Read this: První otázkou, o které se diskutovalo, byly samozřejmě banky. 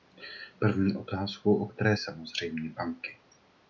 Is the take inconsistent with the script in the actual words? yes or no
yes